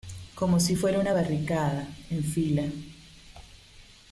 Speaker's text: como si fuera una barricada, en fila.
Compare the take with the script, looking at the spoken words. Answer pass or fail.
pass